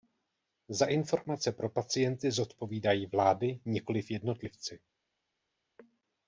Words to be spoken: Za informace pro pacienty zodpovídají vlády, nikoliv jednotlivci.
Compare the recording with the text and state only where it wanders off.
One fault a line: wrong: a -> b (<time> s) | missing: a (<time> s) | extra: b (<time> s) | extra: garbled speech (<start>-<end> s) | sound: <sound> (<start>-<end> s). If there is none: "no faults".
no faults